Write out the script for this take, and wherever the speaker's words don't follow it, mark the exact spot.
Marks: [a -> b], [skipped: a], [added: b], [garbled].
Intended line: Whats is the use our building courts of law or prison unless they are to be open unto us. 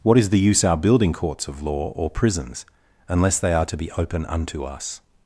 [Whats -> What] is the use our building courts of law or [prison -> prisons] unless they are to be open unto us.